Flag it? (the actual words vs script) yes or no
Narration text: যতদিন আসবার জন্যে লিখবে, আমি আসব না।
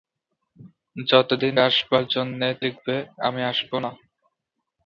no